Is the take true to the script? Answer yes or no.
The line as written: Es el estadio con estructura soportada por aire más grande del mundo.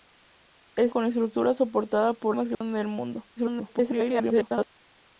no